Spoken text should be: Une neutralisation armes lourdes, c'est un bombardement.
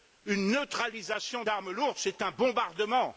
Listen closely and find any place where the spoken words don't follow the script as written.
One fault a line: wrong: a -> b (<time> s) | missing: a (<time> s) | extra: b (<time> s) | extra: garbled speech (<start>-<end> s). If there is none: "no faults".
no faults